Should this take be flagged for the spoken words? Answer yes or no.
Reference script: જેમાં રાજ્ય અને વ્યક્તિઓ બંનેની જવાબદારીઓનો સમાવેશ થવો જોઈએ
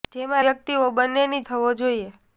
yes